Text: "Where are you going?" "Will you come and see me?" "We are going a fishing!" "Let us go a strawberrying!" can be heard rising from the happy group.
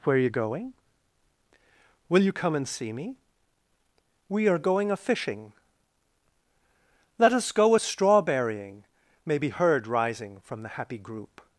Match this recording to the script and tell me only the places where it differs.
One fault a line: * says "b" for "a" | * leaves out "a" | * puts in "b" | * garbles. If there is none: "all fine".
* says "may" for "can"